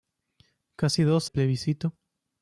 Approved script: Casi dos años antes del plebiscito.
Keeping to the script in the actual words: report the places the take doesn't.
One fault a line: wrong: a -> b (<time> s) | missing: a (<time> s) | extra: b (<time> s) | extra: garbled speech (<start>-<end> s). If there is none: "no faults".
missing: años antes del (1.3 s)